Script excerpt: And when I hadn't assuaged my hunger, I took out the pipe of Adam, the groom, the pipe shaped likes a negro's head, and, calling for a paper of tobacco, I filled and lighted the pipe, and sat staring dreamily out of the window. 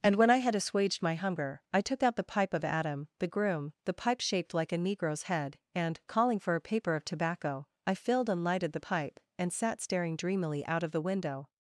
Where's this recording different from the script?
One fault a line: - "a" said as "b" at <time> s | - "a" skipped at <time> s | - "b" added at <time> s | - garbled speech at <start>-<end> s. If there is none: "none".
- "hadn't" said as "had" at 0.4 s
- "likes" said as "like" at 4.5 s